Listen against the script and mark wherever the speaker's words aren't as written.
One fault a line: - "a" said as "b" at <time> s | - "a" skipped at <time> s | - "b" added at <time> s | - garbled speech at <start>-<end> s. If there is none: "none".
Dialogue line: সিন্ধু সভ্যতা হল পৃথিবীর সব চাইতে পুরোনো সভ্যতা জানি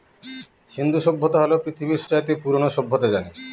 - "সব" skipped at 2.0 s